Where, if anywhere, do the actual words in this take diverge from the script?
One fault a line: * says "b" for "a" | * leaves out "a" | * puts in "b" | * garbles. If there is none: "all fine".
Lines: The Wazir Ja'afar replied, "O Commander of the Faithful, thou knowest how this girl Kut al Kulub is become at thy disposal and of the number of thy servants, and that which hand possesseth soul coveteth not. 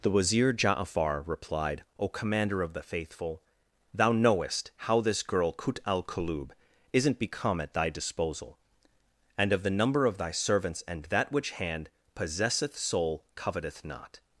* says "isn't" for "is"